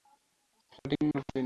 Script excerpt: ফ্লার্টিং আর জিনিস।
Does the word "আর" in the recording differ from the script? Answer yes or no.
no